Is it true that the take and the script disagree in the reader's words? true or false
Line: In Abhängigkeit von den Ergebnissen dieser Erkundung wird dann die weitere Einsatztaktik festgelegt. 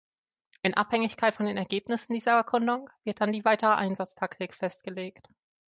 false